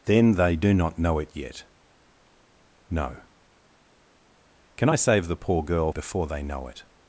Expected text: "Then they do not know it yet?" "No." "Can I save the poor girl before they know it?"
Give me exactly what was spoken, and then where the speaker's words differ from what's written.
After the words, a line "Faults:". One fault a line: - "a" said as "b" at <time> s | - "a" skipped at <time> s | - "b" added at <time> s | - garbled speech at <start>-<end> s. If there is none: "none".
"Then they do not know it yet?" "No." "Can I save the poor girl before they know it?"
Faults:
none